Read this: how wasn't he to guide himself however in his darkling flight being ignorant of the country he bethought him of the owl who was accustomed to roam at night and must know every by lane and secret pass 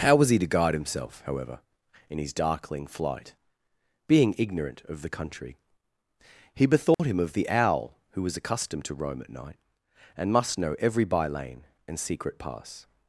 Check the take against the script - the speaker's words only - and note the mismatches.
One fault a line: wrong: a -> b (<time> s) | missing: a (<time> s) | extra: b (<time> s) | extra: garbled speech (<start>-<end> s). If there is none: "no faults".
wrong: wasn't -> was (0.1 s)